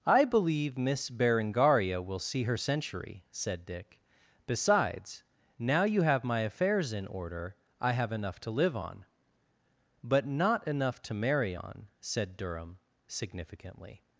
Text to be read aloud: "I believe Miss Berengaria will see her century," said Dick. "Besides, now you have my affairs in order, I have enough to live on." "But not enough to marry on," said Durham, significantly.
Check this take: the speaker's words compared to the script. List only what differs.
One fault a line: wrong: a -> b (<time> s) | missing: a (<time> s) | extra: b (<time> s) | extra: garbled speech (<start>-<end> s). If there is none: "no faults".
no faults